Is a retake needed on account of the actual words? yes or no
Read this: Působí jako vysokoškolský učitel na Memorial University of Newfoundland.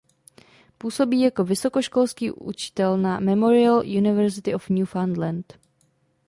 no